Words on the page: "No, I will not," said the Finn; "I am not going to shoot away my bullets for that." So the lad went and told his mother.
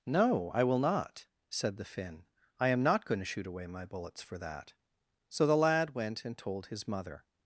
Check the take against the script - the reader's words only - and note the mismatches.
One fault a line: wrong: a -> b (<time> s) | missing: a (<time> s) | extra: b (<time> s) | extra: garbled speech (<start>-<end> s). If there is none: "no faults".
no faults